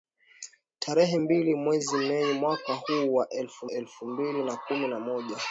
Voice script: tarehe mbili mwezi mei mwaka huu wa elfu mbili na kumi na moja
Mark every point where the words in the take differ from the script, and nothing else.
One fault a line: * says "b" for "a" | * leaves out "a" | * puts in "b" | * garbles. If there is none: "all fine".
* puts in "elfu"